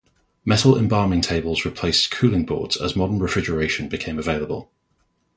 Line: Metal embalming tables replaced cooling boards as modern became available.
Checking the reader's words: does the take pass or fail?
fail